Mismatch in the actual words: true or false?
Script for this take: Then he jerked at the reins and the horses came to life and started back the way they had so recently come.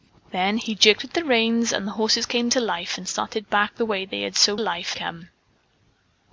true